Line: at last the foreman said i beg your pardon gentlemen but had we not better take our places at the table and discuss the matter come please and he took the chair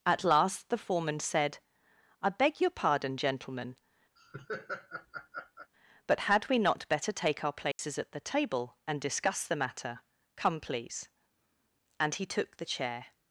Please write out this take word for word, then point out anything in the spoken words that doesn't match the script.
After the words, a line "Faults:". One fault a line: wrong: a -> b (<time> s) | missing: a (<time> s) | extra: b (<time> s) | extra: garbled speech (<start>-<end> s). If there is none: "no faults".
at last the foreman said i beg your pardon gentlemen but had we not better take our places at the table and discuss the matter come please and he took the chair
Faults:
no faults